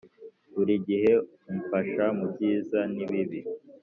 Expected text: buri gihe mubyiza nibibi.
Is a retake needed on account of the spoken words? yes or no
yes